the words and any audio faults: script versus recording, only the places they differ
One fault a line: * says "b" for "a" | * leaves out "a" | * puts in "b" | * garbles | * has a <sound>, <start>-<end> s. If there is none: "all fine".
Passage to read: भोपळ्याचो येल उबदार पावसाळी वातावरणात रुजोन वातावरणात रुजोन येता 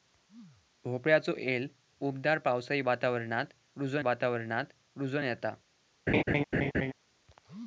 * has a laugh, 6.1-6.9 s